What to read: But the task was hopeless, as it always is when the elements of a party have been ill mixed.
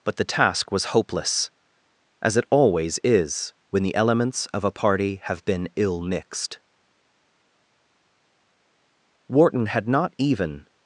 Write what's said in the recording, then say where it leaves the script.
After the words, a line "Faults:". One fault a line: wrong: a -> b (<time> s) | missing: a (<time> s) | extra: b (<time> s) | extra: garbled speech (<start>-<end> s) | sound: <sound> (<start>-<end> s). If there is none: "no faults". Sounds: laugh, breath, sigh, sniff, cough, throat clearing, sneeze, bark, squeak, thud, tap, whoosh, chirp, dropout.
But the task was hopeless, as it always is when the elements of a party have been ill mixed. Wharton had not even
Faults:
extra: Wharton had not even (9.2 s)